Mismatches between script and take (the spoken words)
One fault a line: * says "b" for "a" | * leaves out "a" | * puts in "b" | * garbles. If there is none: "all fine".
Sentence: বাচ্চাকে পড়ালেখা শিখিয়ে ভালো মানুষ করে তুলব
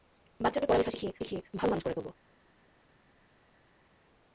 * puts in "শিখিয়ে"